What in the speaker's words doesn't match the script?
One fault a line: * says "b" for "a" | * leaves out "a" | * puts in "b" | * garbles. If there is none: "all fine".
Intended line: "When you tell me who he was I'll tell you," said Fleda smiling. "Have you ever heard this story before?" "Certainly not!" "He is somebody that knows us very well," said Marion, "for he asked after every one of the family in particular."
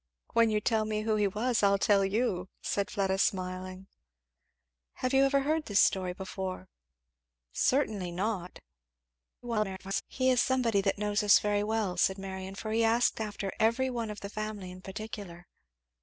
* garbles